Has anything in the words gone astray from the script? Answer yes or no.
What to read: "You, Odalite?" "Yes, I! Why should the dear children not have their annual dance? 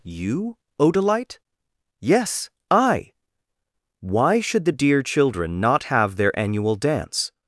no